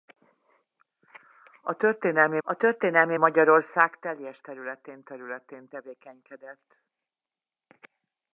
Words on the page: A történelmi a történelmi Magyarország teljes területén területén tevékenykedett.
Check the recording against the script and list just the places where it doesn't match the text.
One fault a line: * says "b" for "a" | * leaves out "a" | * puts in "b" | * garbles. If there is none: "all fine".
all fine